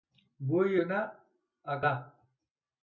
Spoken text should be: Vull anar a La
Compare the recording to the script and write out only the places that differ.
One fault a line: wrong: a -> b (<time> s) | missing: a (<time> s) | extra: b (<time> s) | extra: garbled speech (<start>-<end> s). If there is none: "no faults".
no faults